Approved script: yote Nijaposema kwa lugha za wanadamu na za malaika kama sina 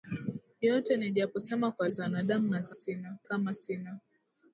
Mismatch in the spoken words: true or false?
true